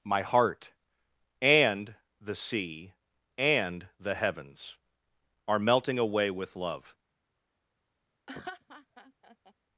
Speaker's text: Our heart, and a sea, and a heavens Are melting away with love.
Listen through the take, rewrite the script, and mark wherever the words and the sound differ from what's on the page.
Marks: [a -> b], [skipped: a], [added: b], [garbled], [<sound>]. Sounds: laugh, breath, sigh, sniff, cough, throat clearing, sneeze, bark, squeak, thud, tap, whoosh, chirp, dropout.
[Our -> My] heart, and [a -> the] sea, and [a -> the] heavens Are melting away with love. [laugh]